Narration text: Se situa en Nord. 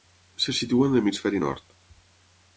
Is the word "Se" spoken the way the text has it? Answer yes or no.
yes